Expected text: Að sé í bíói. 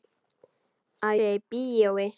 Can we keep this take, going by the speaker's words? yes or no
yes